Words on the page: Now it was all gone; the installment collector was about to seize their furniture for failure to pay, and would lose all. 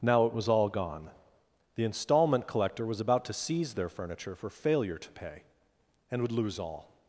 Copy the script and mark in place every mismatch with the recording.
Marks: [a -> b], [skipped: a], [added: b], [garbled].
Now it was all gone; the installment collector was about to seize their furniture for failure to pay, and would lose all.